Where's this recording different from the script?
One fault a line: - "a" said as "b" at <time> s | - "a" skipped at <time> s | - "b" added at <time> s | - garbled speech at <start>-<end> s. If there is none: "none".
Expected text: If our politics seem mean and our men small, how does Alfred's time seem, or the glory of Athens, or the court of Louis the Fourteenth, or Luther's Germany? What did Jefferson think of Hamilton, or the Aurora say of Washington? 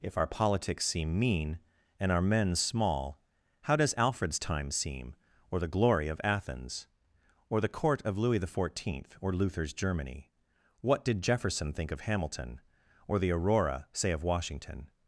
none